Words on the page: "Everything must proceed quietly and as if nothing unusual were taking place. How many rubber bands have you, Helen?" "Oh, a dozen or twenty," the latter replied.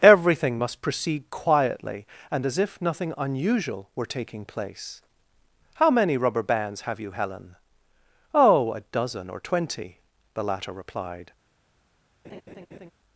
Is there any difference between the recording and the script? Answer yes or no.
no